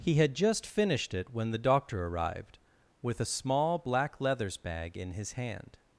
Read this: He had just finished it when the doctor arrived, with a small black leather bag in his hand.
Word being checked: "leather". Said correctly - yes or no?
no